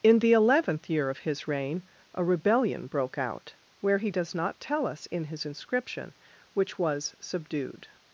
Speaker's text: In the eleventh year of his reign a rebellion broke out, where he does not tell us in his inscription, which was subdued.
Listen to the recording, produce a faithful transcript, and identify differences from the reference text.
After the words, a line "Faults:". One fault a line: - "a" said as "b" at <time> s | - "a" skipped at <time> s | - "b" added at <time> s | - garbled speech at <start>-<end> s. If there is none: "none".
In the eleventh year of his reign a rebellion broke out, where he does not tell us in his inscription, which was subdued.
Faults:
none